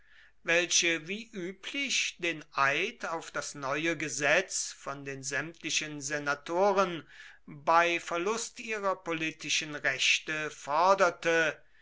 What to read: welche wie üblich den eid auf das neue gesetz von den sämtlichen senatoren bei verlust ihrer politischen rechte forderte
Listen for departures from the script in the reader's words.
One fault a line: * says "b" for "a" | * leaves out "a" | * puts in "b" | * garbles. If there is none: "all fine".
all fine